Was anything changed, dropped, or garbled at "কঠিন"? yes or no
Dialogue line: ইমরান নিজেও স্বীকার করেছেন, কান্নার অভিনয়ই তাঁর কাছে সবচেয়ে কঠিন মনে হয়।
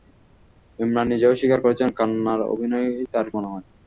yes